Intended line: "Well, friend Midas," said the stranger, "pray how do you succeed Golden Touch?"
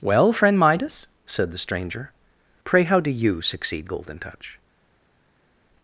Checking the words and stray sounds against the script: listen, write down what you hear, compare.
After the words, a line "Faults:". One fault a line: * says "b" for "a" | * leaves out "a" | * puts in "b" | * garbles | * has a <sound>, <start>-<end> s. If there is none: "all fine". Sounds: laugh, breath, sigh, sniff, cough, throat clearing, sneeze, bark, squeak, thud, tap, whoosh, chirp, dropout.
"Well, friend Midas," said the stranger, "pray how do you succeed Golden Touch?"
Faults:
all fine